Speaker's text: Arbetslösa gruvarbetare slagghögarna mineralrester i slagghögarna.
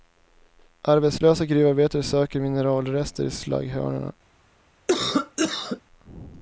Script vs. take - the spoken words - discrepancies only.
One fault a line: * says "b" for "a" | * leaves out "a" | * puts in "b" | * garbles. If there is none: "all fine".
* says "söker" for "slagghögarna"